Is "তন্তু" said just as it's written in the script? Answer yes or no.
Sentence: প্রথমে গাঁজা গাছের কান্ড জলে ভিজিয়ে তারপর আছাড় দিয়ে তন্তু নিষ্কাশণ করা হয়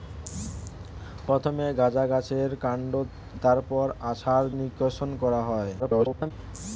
no